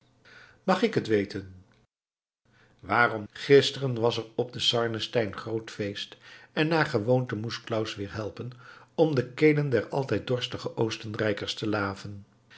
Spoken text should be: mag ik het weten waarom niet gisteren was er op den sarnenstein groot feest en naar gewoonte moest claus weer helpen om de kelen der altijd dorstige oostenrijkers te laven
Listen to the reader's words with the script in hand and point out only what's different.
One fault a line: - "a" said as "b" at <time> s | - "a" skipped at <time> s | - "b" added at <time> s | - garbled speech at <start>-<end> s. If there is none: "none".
- "niet" skipped at 3.2 s